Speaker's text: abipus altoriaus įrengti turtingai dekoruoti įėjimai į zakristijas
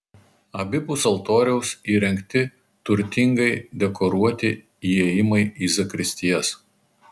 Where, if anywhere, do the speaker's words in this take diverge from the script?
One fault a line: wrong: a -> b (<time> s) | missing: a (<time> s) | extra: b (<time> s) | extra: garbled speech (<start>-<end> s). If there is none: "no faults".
no faults